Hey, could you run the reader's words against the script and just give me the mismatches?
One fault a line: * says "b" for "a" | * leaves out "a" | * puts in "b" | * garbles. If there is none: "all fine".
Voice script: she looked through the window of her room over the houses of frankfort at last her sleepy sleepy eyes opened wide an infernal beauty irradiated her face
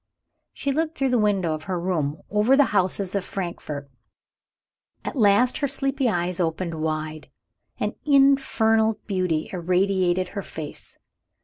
* leaves out "sleepy"